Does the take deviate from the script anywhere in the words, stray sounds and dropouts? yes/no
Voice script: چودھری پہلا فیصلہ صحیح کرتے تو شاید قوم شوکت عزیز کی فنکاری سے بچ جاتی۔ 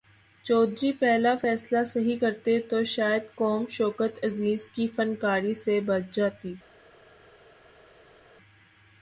no